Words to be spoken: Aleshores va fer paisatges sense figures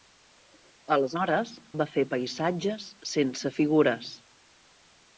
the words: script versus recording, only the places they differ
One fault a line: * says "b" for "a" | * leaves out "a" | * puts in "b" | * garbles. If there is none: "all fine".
all fine